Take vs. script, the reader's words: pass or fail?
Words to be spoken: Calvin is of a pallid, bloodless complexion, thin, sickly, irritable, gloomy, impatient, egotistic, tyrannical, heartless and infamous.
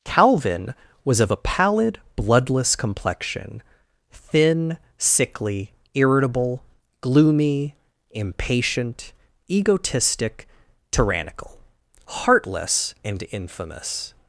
fail